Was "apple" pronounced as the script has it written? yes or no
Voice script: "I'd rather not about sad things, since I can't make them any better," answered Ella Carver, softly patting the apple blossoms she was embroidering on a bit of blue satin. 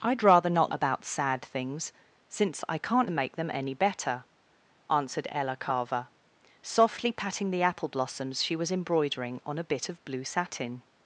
yes